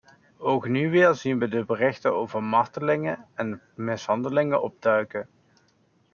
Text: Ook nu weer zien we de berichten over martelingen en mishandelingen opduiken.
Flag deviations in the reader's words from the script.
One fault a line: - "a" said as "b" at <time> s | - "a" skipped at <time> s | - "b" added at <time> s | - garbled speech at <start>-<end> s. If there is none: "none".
none